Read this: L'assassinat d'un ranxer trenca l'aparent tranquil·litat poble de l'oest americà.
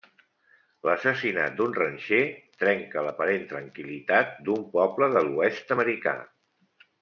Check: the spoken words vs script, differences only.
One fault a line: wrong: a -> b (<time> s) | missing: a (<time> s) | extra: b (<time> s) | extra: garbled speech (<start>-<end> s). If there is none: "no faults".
extra: d'un (4.5 s)